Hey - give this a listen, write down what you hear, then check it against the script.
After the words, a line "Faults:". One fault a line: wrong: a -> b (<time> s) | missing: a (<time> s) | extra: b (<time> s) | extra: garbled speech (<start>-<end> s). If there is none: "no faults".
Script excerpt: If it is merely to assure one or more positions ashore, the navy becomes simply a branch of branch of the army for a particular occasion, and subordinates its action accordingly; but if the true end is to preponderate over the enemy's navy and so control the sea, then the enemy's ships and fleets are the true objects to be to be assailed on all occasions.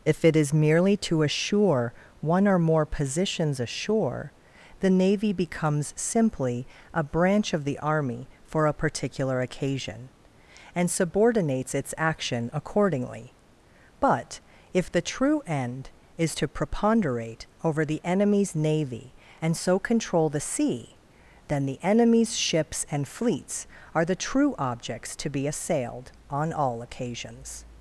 If it is merely to assure one or more positions ashore, the navy becomes simply a branch of the army for a particular occasion, and subordinates its action accordingly; but if the true end is to preponderate over the enemy's navy and so control the sea, then the enemy's ships and fleets are the true objects to be assailed on all occasions.
Faults:
missing: branch of (7.7 s)
missing: to be (25.5 s)